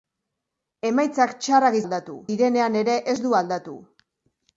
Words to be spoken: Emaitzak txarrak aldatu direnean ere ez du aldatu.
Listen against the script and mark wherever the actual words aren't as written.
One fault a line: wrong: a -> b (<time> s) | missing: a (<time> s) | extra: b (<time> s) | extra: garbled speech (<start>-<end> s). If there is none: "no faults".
no faults